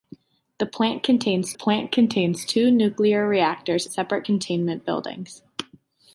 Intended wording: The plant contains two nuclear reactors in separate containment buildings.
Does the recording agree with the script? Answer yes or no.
no